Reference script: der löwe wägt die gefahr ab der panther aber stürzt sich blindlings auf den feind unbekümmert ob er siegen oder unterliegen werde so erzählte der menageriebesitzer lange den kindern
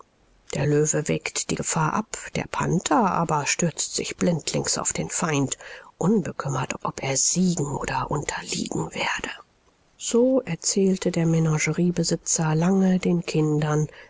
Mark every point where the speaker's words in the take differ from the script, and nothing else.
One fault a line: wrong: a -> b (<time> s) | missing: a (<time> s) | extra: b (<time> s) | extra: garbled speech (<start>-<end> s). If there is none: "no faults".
no faults